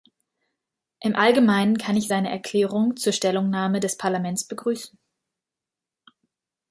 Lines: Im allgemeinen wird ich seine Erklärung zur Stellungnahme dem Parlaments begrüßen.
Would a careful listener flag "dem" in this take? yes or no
yes